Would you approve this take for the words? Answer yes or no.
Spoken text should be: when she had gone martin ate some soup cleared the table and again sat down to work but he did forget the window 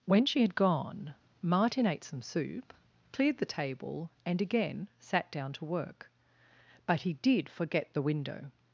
yes